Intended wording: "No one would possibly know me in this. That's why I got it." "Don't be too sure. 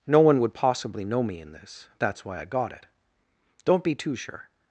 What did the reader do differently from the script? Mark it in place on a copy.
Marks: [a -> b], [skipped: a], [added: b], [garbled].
"No one would possibly know me in this. That's why I got it." "Don't be too sure.